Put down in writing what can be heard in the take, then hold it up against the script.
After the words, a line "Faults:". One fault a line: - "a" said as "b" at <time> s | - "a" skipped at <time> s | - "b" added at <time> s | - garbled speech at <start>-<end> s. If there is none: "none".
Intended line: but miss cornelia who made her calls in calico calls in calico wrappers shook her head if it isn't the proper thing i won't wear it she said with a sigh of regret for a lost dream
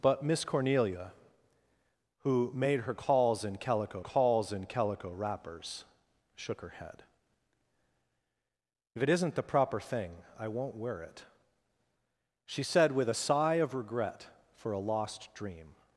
but miss cornelia who made her calls in calico calls in calico wrappers shook her head if it isn't the proper thing i won't wear it she said with a sigh of regret for a lost dream
Faults:
none